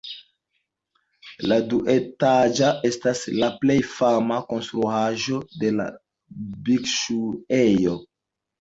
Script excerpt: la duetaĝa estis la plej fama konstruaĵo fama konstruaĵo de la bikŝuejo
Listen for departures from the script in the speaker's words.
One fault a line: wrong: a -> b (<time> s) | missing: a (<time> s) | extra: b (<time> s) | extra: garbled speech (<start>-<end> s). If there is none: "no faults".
wrong: estis -> estas (2.9 s)
missing: fama konstruaĵo (5.4 s)